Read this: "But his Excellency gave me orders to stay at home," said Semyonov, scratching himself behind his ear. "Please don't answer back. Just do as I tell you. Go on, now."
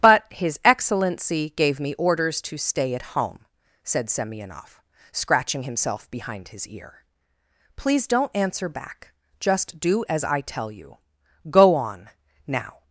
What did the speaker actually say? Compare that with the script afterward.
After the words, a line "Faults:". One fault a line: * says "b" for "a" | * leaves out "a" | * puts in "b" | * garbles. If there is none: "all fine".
"But his Excellency gave me orders to stay at home," said Semyonov, scratching himself behind his ear. "Please don't answer back. Just do as I tell you. Go on, now."
Faults:
all fine